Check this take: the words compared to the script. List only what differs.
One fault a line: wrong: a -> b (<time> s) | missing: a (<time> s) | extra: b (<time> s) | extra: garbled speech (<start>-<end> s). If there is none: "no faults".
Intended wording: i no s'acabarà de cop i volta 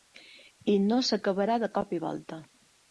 no faults